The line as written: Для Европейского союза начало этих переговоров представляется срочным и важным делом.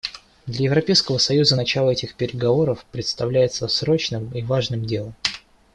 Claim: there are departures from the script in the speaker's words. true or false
false